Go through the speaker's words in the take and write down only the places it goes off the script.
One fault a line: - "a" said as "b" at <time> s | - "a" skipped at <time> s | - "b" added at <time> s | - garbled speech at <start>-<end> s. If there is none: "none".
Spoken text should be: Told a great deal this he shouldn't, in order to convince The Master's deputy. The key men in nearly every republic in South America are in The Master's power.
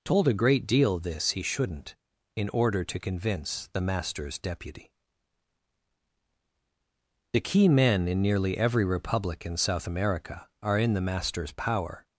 none